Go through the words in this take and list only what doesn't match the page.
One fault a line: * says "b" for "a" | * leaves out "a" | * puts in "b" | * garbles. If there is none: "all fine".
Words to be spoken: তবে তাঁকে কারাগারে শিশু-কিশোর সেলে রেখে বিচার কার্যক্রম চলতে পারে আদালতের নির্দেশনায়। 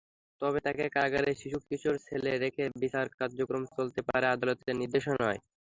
all fine